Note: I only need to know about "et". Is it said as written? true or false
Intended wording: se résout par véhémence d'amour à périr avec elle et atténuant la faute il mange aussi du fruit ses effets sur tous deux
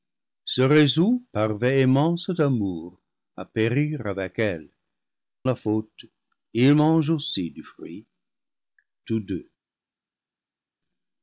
false